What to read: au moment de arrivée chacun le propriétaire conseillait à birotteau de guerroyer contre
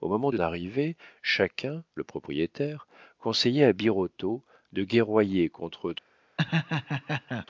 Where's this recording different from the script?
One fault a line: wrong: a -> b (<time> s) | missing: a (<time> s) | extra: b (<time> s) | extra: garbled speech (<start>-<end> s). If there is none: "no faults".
no faults